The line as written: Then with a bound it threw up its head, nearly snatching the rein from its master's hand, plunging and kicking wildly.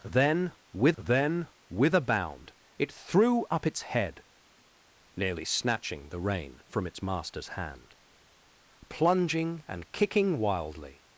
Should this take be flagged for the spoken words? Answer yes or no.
yes